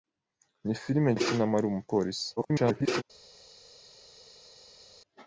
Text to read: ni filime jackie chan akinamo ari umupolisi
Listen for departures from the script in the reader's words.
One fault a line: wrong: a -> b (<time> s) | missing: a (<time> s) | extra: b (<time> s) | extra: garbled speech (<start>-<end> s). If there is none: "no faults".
missing: jackie chan (1.1 s)
extra: garbled speech (2.4-3.0 s)